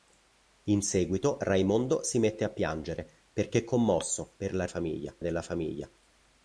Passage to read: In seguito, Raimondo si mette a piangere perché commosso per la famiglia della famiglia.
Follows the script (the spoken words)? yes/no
yes